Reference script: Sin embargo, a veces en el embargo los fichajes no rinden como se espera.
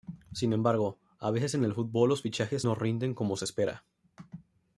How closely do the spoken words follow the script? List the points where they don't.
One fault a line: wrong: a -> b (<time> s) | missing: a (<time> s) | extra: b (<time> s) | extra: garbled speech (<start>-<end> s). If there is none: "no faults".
wrong: embargo -> fútbol (1.8 s)